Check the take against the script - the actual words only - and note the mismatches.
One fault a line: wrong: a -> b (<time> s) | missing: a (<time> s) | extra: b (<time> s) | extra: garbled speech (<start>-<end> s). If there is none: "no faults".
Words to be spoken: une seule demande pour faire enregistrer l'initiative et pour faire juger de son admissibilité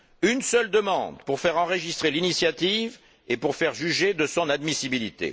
no faults